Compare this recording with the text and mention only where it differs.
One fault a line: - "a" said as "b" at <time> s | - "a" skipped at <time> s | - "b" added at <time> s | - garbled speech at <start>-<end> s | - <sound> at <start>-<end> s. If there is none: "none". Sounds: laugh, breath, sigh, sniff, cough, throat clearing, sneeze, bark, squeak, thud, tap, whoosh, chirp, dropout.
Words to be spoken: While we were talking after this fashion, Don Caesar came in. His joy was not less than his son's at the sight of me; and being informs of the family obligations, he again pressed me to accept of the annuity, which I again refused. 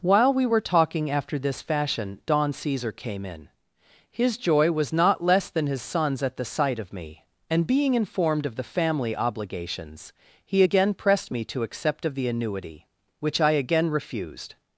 - "informs" said as "informed" at 7.9 s